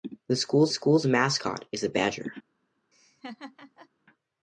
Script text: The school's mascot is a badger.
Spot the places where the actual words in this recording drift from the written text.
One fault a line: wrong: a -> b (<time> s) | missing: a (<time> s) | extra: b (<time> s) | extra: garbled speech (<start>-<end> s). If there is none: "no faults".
extra: school's (0.7 s)